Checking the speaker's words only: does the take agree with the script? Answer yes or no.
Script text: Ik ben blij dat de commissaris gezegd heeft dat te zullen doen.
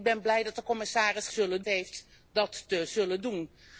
no